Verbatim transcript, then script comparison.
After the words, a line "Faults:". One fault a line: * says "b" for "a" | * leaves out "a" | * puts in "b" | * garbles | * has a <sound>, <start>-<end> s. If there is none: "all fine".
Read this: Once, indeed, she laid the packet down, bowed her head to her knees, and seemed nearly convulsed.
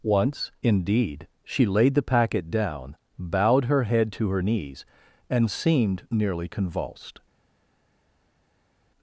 Once, indeed, she laid the packet down, bowed her head to her knees, and seemed nearly convulsed.
Faults:
all fine